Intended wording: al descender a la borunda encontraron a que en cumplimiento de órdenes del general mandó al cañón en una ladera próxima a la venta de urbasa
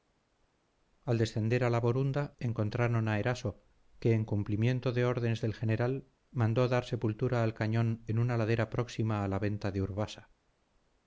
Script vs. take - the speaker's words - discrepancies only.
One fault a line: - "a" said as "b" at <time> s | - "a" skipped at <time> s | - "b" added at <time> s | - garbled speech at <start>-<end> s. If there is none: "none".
- "eraso" added at 3.2 s
- "dar sepultura" added at 6.7 s